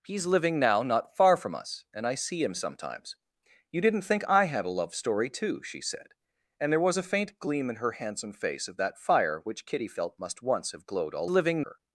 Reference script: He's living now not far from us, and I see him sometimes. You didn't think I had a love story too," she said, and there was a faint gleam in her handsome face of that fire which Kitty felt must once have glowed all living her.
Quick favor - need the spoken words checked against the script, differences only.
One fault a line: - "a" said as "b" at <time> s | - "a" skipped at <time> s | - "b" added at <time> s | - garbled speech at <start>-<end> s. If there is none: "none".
none